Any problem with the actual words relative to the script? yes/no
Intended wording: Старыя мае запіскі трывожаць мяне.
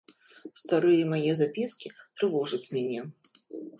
no